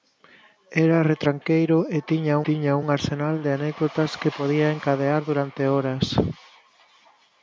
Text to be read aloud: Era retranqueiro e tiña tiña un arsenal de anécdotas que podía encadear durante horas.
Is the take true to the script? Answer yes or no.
yes